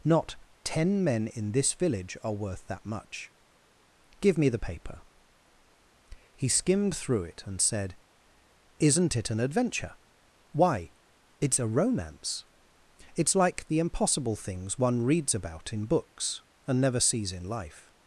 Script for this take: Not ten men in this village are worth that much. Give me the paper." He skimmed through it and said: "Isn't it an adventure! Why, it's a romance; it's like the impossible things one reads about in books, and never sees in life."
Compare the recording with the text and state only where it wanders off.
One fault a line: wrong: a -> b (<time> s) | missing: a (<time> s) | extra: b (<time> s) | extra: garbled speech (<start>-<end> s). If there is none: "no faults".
no faults